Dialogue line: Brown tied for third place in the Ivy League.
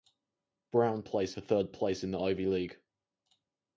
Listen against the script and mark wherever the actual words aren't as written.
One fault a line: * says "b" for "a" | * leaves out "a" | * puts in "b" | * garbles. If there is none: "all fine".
* says "place" for "tied"